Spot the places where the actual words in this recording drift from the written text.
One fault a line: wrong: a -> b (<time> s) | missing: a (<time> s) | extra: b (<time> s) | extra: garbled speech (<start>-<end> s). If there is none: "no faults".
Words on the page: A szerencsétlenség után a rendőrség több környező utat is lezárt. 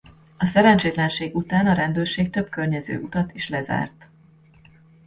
no faults